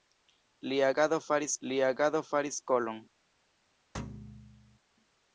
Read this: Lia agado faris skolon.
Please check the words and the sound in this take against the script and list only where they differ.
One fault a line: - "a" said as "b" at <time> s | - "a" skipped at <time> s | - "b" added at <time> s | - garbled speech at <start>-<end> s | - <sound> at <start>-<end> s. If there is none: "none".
- "lia agado faris" added at 1.7 s
- thud at 3.9-4.8 s